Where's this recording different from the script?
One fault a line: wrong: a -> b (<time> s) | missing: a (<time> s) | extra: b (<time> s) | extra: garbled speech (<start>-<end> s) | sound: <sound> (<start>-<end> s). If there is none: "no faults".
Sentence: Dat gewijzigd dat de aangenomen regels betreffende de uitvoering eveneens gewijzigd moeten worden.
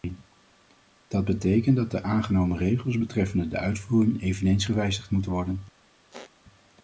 wrong: gewijzigd -> betekent (1.2 s)
sound: squeak (6.1-6.3 s)